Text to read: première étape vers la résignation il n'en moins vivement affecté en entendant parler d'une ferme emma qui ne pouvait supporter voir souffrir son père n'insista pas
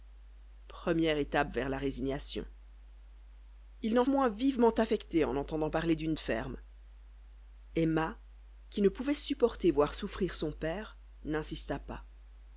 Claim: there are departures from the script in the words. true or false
false